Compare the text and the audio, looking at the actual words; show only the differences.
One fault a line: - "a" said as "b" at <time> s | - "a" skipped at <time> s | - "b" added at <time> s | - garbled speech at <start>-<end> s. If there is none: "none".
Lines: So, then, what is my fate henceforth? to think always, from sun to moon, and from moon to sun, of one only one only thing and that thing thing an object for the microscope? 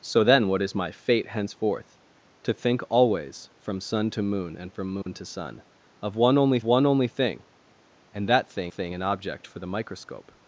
none